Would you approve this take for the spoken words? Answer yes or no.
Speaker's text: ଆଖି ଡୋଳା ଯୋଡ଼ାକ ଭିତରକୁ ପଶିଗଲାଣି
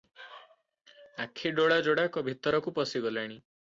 yes